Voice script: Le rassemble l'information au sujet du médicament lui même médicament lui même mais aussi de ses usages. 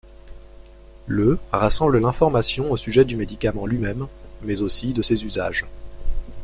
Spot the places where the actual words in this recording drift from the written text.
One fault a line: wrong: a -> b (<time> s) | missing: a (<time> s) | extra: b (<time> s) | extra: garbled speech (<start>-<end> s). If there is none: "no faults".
missing: médicament lui même (4.1 s)